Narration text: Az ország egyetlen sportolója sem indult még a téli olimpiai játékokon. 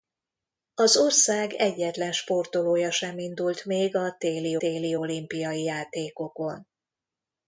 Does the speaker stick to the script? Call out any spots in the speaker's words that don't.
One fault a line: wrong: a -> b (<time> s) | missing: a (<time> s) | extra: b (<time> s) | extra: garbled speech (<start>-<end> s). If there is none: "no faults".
extra: téli (4.6 s)